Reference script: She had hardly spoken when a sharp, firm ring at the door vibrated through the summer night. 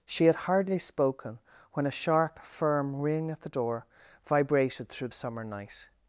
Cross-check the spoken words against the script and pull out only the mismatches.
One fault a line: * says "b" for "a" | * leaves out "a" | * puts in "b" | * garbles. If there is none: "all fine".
* leaves out "the"